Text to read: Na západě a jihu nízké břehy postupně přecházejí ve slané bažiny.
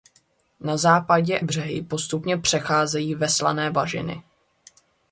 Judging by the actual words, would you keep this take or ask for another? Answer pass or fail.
fail